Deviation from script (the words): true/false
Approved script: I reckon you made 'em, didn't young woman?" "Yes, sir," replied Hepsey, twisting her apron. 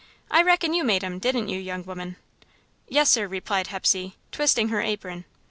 true